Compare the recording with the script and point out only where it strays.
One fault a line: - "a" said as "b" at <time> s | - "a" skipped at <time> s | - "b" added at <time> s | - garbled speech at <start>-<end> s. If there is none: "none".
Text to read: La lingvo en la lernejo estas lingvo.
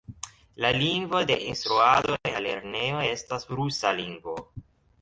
- "de instruado" added at 1.2 s
- "rusa" added at 3.6 s